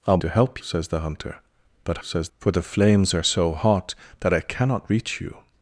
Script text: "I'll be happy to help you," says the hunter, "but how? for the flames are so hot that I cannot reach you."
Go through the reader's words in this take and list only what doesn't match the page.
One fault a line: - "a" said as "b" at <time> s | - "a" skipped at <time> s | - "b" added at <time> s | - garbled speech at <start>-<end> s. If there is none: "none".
- "be happy" skipped at 0.2 s
- "you" skipped at 0.6 s
- "how" said as "says" at 2.0 s